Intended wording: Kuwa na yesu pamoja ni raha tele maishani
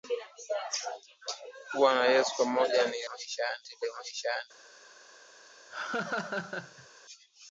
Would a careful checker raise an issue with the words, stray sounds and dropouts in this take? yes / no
yes